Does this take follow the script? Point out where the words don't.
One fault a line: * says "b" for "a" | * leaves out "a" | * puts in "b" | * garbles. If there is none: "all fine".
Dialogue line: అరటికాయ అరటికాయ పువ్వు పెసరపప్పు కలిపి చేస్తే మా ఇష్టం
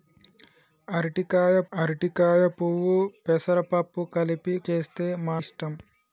all fine